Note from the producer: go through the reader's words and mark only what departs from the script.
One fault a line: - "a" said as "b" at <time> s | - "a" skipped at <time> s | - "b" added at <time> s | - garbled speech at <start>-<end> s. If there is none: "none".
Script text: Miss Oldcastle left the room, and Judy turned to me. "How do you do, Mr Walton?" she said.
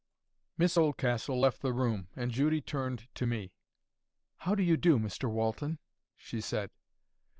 none